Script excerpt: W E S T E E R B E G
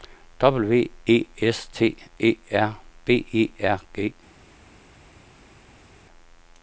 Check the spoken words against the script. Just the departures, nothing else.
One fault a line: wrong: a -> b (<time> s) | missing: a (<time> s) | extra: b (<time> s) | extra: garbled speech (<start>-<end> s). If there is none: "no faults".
missing: E (2.4 s)
extra: R (3.6 s)